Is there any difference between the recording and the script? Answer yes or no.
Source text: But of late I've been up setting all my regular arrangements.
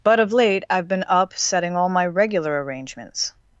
no